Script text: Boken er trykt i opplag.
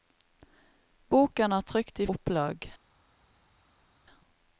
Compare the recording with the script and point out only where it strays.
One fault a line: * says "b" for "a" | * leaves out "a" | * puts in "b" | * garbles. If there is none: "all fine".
all fine